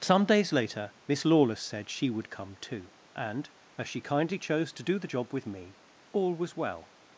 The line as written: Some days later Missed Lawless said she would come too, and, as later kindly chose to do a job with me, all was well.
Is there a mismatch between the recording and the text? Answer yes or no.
yes